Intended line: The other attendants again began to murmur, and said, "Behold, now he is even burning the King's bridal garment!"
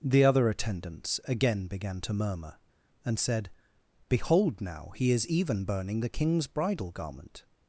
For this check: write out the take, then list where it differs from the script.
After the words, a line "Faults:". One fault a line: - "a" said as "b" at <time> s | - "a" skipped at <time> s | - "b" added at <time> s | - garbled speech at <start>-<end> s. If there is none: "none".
The other attendants again began to murmur, and said, "Behold, now he is even burning the King's bridal garment!"
Faults:
none